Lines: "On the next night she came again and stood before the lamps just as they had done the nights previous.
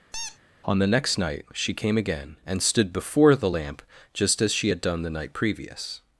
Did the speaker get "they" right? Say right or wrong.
wrong